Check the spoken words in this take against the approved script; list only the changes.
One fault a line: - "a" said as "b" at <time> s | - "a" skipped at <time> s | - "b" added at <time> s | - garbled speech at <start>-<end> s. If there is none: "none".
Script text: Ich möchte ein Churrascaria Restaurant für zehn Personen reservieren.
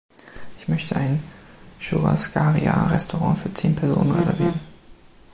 none